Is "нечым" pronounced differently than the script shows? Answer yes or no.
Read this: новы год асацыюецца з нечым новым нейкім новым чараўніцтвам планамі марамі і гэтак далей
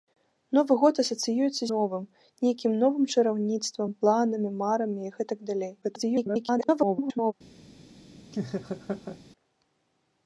yes